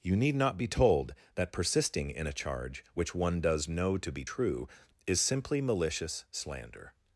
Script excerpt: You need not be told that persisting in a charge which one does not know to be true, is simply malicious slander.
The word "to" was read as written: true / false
true